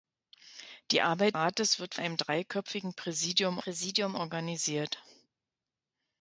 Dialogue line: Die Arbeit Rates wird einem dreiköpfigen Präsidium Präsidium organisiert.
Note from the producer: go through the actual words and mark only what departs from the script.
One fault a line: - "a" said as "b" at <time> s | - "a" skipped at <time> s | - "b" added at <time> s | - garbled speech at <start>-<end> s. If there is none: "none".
none